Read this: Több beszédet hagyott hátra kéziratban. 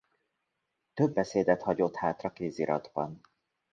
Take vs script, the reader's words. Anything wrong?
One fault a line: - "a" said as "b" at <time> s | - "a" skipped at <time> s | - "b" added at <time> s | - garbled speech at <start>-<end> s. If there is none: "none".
none